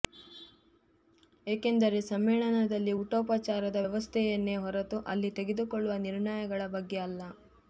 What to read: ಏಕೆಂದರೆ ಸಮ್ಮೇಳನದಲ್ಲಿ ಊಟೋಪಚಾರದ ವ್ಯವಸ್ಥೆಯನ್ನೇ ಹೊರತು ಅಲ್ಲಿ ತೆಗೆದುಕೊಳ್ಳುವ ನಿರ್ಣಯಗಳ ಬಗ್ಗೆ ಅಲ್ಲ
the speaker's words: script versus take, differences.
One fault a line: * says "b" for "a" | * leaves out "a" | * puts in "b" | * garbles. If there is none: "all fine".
all fine